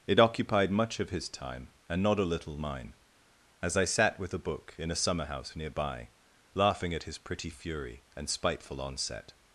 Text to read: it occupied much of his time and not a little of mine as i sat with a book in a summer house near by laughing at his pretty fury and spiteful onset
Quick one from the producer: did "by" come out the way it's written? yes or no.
yes